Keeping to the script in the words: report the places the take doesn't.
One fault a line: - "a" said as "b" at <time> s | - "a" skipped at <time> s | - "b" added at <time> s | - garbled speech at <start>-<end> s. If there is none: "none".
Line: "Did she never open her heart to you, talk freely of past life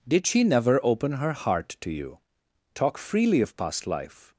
none